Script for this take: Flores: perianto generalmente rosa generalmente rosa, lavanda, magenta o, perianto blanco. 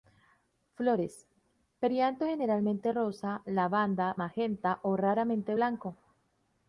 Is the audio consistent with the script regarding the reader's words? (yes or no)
no